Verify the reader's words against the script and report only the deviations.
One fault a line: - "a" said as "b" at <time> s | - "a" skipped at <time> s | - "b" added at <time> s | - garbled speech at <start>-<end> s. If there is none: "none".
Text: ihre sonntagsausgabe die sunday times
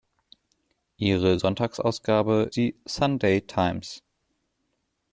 none